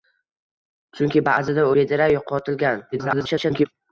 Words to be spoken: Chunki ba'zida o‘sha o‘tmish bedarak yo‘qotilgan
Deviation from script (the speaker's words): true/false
true